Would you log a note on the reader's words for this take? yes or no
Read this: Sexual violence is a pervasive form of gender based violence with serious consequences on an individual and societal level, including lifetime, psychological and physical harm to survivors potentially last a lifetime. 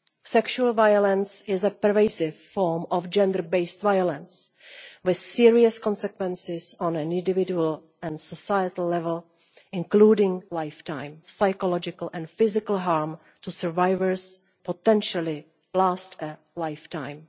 no